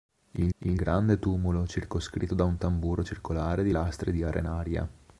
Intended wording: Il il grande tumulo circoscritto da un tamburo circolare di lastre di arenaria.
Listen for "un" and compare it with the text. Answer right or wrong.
right